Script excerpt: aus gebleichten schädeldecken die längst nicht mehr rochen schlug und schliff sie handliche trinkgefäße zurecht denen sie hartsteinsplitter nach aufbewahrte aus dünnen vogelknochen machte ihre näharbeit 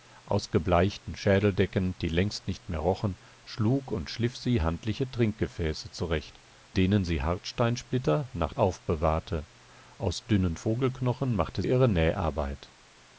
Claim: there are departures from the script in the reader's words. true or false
false